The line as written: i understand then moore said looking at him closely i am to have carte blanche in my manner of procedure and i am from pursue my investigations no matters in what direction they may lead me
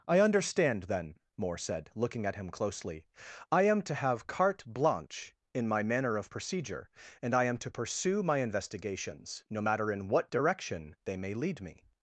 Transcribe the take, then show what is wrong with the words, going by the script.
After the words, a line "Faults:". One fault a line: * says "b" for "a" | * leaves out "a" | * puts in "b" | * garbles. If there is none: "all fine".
i understand then moore said looking at him closely i am to have carte blanche in my manner of procedure and i am to pursue my investigations no matter in what direction they may lead me
Faults:
* says "to" for "from"
* says "matter" for "matters"